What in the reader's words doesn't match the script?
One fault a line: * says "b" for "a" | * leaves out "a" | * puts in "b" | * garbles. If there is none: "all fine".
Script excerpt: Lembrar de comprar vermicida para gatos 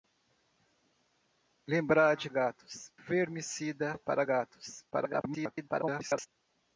* says "gatos" for "comprar"
* garbles